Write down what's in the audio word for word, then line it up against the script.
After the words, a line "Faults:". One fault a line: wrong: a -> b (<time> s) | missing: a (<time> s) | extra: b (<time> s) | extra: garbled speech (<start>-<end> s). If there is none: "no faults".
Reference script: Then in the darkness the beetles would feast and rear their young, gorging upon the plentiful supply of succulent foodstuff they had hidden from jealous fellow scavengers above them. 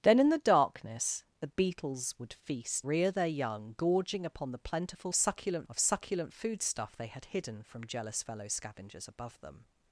Then in the darkness the beetles would feast rear their young, gorging upon the plentiful succulent of succulent foodstuff they had hidden from jealous fellow scavengers above them.
Faults:
missing: and (2.9 s)
wrong: supply -> succulent (5.1 s)